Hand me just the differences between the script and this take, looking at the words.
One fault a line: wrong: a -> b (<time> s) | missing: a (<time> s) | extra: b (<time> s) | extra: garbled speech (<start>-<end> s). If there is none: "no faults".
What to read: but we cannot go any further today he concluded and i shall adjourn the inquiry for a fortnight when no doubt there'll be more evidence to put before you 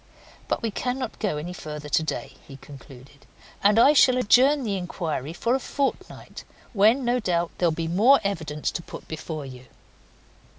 no faults